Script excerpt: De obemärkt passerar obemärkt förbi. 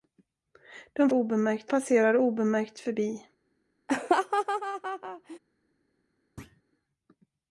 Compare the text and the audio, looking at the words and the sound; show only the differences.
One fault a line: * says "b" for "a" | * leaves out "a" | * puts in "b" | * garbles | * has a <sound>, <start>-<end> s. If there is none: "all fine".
* has a laugh, 3.9-5.4 s
* has a thud, 6.4-6.6 s